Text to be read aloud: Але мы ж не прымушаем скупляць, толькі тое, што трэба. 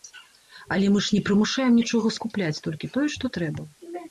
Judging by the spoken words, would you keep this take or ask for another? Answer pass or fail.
fail